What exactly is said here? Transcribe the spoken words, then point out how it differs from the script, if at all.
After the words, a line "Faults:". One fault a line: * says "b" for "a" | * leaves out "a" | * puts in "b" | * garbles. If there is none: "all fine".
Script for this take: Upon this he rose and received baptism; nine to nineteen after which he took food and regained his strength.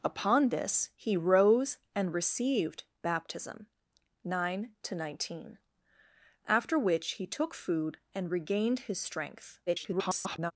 Upon this he rose and received baptism; nine to nineteen after which he took food and regained his strength. [garbled]
Faults:
* garbles